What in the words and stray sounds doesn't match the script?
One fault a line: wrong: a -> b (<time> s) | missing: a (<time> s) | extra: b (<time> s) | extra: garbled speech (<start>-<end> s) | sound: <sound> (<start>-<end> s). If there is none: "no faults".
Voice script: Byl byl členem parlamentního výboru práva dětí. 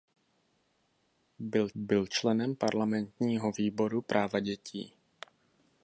no faults